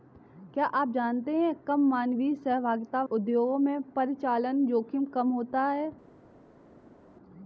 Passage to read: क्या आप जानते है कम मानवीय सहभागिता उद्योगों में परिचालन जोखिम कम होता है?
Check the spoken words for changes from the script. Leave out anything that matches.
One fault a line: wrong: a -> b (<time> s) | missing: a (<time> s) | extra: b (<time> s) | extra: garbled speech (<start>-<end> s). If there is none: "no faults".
no faults